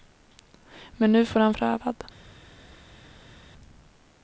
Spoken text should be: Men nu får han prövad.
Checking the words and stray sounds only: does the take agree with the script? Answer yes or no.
yes